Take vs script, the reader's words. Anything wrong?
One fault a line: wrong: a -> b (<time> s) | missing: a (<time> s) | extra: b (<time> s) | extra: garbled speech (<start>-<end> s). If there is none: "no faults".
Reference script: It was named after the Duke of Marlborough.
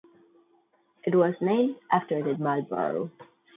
missing: Duke of (2.3 s)